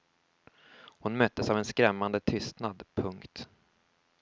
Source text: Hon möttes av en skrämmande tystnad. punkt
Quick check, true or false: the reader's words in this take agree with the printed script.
true